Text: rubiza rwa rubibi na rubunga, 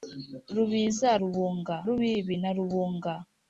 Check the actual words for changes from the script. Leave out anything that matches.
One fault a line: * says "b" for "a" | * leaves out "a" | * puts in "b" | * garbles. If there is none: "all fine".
* says "rubunga" for "rwa"